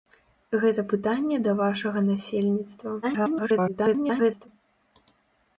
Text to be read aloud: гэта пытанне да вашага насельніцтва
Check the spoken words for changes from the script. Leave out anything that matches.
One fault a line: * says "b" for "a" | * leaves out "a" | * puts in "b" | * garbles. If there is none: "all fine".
* garbles